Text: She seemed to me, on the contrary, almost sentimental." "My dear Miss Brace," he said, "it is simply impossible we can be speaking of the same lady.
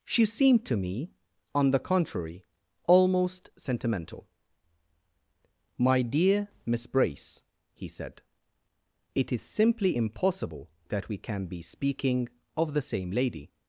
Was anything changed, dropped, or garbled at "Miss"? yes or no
no